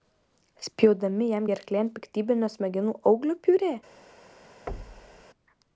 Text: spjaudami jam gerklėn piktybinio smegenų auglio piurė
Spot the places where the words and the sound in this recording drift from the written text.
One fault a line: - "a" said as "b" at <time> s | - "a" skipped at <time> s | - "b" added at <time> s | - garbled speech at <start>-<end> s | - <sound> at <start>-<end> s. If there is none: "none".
- thud at 4.7-5.3 s